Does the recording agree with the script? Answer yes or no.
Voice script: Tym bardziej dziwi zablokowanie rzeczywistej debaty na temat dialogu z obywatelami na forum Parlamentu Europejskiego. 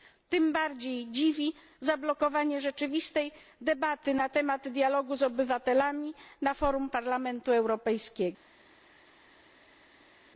yes